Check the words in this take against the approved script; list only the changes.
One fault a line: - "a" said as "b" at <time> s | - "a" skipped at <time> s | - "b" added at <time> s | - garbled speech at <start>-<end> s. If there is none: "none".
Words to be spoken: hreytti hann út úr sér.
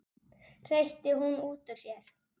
- "hann" said as "hún" at 1.2 s